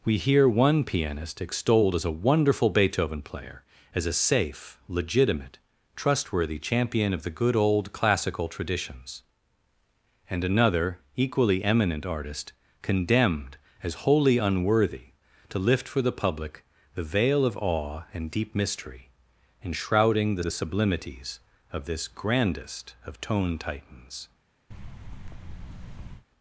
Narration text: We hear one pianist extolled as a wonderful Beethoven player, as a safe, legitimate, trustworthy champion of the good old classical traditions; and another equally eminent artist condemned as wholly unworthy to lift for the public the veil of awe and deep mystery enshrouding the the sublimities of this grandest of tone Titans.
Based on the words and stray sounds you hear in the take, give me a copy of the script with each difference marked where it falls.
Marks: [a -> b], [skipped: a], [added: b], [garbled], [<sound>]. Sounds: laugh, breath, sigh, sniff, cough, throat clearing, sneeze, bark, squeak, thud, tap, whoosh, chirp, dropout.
We hear one pianist extolled as a wonderful Beethoven player, as a safe, legitimate, trustworthy champion of the good old classical traditions; and another equally eminent artist condemned as wholly unworthy to lift for the public the veil of awe and deep mystery enshrouding the the sublimities of this grandest of tone Titans. [thud]